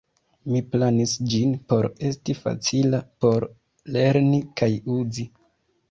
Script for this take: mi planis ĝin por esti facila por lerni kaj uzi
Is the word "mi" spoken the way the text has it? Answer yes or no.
yes